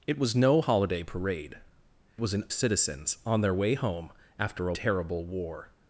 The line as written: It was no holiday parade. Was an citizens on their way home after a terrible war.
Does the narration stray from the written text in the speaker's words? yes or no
no